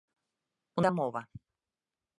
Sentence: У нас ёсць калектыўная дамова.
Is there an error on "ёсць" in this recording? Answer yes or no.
yes